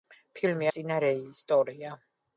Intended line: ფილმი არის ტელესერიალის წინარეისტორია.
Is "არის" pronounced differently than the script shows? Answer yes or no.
yes